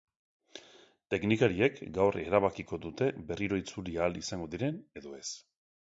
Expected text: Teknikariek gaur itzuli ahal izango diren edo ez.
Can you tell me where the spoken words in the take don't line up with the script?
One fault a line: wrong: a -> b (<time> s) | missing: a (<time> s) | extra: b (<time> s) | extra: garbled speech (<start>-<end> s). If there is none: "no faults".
extra: erabakiko dute berriro (2.2 s)